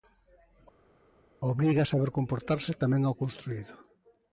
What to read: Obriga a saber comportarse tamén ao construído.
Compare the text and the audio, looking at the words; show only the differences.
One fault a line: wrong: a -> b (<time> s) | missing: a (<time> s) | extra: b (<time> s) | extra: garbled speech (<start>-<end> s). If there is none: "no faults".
no faults